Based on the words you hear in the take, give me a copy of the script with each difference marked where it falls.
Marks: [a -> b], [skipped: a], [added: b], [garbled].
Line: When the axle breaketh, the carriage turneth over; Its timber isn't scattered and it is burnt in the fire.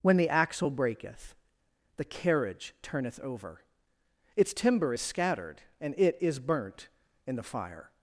When the axle breaketh, the carriage turneth over; Its timber [isn't -> is] scattered and it is burnt in the fire.